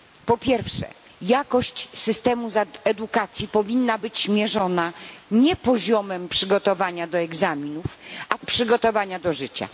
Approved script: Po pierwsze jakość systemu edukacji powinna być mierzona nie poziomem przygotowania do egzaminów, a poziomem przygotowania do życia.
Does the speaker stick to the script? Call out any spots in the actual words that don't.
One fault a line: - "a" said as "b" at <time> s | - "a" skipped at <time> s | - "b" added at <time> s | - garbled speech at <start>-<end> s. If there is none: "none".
- "poziomem" skipped at 8.4 s